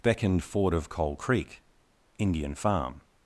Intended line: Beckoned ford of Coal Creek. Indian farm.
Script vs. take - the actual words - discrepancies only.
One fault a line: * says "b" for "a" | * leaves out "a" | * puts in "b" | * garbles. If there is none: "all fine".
all fine